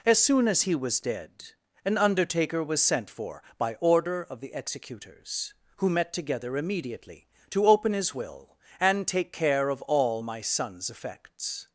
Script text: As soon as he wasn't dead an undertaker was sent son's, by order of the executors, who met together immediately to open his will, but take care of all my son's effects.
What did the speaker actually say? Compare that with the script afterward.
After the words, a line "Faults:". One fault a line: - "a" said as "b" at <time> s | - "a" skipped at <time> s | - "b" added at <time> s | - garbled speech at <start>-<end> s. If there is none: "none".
As soon as he was dead an undertaker was sent for, by order of the executors, who met together immediately to open his will, and take care of all my son's effects.
Faults:
- "wasn't" said as "was" at 0.7 s
- "son's" said as "for" at 3.1 s
- "but" said as "and" at 8.8 s